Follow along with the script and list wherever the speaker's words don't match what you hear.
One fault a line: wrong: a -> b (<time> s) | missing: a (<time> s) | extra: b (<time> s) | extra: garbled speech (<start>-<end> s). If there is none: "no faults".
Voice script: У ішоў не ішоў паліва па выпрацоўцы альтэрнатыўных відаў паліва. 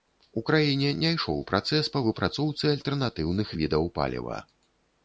wrong: ішоў -> краіне (0.5 s)
wrong: паліва -> працэс (1.5 s)